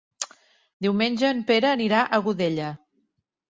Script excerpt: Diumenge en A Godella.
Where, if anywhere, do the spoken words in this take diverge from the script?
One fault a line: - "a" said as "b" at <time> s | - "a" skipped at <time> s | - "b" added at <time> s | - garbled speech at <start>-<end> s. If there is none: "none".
- "Pere anirà" added at 1.5 s